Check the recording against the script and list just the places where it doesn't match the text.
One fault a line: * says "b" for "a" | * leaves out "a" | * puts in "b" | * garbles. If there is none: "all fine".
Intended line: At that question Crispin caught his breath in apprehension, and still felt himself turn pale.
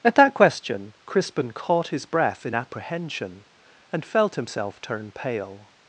* leaves out "still"